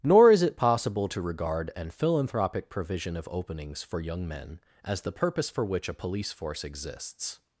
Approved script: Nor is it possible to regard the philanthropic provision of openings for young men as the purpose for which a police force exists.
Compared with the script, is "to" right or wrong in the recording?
right